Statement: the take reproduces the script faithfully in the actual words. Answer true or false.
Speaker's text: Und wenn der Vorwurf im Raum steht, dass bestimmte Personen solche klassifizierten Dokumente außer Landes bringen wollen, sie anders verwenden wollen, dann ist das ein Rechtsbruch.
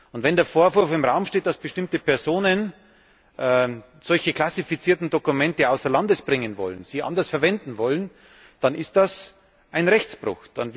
true